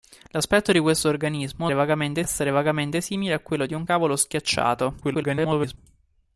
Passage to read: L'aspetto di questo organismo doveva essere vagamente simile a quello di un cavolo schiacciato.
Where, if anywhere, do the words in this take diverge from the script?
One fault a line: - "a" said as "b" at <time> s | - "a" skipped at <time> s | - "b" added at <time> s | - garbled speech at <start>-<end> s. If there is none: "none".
- "doveva" said as "vagamente" at 1.7 s
- garbled speech at 5.0-5.8 s